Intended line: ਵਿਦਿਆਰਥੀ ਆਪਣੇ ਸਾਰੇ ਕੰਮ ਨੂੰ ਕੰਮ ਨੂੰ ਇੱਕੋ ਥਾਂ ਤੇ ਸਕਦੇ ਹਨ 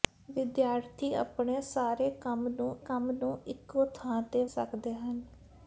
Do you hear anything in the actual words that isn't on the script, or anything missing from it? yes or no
no